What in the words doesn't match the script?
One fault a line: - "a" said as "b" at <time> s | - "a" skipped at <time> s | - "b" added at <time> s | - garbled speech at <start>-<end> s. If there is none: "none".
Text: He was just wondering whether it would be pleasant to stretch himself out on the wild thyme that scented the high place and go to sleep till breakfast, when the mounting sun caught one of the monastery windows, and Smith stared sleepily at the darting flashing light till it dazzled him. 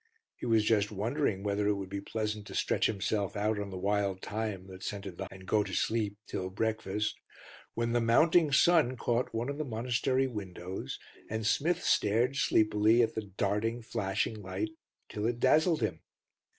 - "high place" skipped at 5.3 s